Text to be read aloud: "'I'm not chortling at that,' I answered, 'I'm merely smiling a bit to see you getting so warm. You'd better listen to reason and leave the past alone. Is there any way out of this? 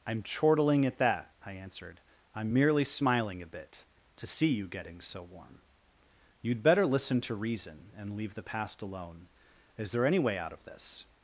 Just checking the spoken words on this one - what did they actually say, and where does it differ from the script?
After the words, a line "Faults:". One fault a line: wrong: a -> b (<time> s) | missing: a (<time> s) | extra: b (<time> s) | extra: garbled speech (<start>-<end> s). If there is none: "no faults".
"'I'm chortling at that,' I answered, 'I'm merely smiling a bit to see you getting so warm. You'd better listen to reason and leave the past alone. Is there any way out of this?
Faults:
missing: not (0.2 s)